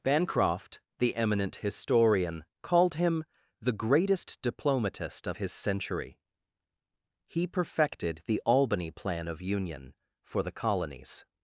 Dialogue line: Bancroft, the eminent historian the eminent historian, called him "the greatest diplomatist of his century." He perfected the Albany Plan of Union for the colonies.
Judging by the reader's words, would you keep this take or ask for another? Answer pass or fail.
fail